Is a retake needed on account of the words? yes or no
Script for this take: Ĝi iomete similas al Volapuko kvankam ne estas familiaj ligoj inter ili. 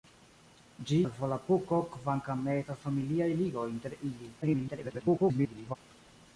yes